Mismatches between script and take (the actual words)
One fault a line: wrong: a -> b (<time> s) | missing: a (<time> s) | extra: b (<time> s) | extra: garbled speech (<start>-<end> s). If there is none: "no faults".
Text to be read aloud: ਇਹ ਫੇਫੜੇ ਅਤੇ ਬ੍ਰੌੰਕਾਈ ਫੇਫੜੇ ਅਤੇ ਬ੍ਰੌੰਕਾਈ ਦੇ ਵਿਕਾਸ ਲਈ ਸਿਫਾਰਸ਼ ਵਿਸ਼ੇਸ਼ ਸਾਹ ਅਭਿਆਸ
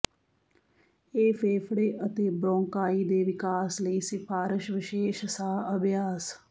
missing: ਫੇਫੜੇ ਅਤੇ ਬ੍ਰੌੰਕਾਈ (3.0 s)